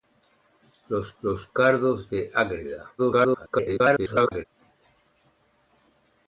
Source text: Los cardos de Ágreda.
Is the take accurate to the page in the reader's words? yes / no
no